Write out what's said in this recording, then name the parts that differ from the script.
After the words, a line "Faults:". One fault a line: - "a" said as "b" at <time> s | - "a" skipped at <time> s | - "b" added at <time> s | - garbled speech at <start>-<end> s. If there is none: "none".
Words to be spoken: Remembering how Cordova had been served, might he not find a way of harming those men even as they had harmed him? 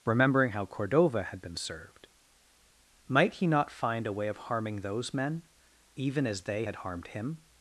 Remembering how Cordova had been served, might he not find a way of harming those men even as they had harmed him?
Faults:
none